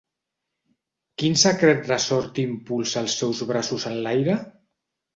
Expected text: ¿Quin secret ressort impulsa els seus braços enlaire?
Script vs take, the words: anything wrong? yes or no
no